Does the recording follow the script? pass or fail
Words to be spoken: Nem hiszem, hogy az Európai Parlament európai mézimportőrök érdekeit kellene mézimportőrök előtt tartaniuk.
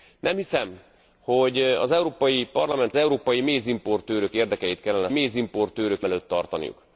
pass